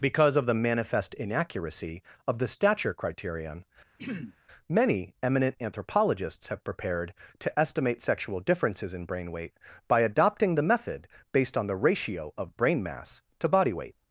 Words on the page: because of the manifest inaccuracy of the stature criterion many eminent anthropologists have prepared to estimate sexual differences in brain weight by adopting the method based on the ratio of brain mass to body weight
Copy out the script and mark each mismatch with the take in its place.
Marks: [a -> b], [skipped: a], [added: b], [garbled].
because of the manifest inaccuracy of the stature criterion many eminent anthropologists have prepared to estimate sexual differences in brain weight by adopting the method based on the ratio of brain mass to body weight